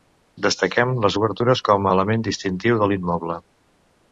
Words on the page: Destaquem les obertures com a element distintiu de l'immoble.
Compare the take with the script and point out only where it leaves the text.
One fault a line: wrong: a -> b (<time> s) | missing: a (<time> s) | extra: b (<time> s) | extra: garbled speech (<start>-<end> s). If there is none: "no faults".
no faults